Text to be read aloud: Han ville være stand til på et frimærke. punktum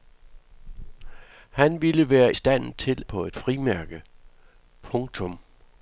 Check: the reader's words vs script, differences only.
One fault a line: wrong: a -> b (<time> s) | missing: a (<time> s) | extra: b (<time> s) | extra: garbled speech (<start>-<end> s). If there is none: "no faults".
no faults